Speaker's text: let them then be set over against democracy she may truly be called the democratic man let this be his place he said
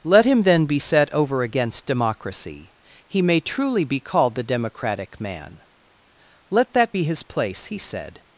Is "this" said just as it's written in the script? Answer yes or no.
no